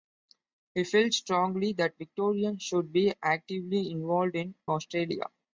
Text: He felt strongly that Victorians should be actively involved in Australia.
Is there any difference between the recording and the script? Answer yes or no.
no